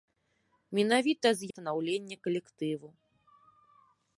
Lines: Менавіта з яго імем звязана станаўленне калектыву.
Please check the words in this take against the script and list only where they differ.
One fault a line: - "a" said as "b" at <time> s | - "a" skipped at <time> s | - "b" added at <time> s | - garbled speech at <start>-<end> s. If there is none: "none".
- "яго імем звязана" skipped at 1.5 s